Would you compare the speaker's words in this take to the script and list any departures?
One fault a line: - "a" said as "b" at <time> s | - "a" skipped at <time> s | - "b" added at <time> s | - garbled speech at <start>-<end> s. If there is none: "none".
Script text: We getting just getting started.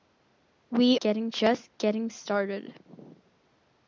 none